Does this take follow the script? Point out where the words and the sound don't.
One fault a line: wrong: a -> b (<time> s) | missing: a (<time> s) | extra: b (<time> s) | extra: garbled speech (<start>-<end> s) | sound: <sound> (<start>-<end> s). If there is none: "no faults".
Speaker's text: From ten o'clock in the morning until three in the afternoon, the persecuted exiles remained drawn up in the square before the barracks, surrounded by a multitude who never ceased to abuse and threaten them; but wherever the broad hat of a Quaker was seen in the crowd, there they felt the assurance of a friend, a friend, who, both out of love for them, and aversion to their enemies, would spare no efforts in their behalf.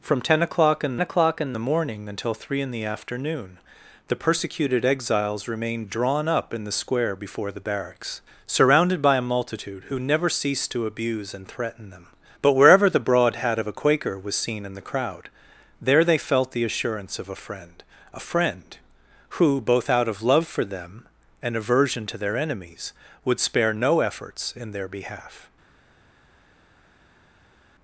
extra: o'clock in (1.0 s)